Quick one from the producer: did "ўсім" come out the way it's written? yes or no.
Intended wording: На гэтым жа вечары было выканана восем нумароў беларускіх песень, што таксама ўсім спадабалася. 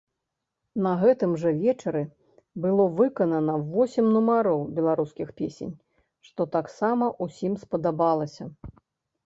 yes